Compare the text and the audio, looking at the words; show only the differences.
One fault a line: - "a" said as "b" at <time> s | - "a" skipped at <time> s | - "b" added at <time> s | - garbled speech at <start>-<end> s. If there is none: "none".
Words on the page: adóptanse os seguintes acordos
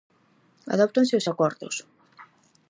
- "seguintes" skipped at 1.2 s